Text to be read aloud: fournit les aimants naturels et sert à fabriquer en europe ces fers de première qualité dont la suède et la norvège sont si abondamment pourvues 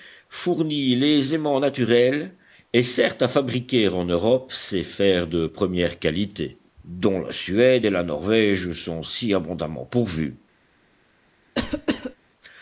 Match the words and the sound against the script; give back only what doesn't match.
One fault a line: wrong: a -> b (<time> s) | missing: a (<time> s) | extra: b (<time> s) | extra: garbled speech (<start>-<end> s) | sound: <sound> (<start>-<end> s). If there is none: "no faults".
sound: cough (11.5-12.2 s)